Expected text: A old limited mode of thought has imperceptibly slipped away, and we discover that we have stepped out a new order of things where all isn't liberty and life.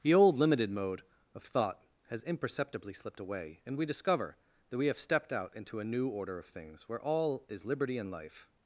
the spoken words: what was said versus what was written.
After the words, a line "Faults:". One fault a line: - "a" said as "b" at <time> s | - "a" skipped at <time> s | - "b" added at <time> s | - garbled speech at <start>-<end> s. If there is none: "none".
The old limited mode of thought has imperceptibly slipped away, and we discover that we have stepped out into a new order of things where all is liberty and life.
Faults:
- "A" said as "The" at 0.0 s
- "into" added at 5.5 s
- "isn't" said as "is" at 7.5 s